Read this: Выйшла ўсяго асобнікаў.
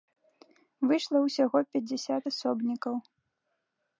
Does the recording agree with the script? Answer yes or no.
no